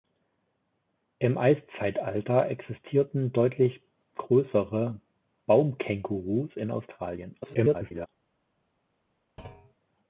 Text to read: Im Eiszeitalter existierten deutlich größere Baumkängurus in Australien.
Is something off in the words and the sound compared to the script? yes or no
yes